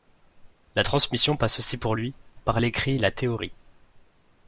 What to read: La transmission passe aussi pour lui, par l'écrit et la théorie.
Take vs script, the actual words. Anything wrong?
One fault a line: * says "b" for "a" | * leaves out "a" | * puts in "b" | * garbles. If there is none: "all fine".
all fine